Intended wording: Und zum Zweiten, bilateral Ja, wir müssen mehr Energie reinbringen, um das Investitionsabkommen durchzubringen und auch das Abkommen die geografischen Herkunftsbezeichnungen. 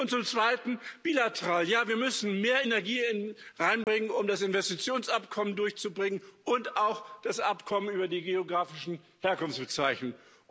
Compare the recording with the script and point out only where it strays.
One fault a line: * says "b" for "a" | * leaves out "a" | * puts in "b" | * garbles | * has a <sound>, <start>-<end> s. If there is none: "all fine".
* has a dropout, 3.8-3.9 s
* puts in "über"